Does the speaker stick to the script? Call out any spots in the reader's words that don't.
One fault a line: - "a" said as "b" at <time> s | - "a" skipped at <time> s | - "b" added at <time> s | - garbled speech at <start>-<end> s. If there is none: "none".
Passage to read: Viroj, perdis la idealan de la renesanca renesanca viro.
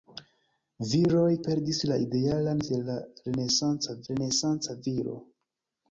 none